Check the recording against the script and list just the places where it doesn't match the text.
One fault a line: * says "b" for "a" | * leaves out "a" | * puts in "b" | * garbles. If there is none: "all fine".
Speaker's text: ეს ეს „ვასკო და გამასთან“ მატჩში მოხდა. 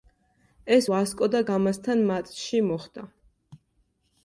* leaves out "ეს"